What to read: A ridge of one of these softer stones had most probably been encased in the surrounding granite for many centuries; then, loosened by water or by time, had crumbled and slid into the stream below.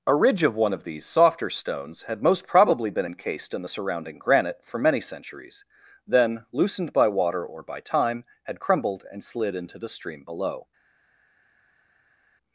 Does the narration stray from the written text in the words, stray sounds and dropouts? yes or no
no